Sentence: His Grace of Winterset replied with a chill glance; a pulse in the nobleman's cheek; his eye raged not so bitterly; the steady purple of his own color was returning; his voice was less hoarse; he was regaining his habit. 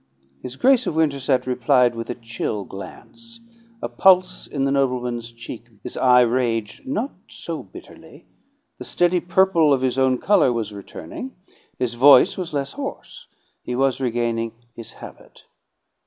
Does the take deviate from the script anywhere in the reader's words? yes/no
no